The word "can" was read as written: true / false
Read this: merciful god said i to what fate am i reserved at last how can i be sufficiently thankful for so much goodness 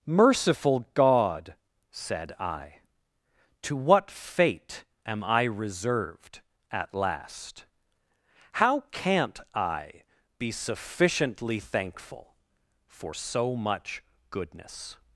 false